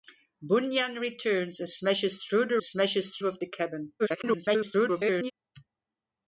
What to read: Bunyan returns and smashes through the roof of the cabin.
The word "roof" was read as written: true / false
false